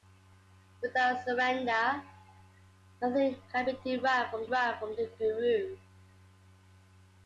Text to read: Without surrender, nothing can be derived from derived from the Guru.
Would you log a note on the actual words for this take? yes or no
no